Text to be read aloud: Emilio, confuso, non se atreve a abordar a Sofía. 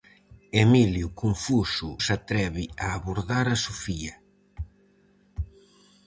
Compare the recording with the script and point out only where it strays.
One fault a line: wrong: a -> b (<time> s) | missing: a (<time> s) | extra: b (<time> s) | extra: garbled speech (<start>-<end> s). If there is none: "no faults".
missing: non (1.9 s)